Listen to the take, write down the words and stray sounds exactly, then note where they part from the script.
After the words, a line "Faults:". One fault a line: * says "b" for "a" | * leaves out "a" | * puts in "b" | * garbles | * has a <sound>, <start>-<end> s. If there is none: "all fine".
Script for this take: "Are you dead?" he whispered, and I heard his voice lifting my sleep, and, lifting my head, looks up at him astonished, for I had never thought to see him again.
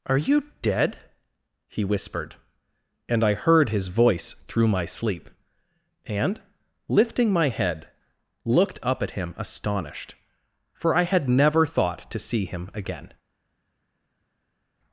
"Are you dead?" he whispered, and I heard his voice through my sleep, and, lifting my head, looked up at him astonished, for I had never thought to see him again.
Faults:
* says "through" for "lifting"
* says "looked" for "looks"